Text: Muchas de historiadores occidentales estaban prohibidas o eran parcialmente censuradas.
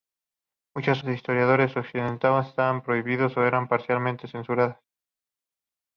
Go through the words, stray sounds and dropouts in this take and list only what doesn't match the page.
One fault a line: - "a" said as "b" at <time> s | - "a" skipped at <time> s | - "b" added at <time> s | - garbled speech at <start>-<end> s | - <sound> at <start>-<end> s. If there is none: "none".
none